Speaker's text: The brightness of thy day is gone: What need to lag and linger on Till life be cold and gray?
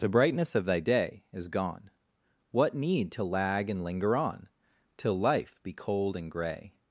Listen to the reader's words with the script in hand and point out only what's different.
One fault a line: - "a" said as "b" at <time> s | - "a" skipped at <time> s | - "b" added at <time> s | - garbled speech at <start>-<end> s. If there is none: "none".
none